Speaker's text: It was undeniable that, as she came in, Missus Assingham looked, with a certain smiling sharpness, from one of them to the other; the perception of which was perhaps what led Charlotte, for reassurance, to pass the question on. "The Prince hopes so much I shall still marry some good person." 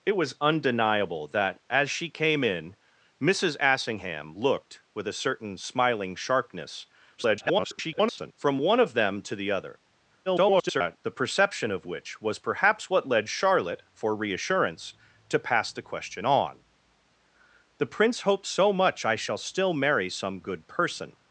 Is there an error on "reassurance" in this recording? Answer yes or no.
no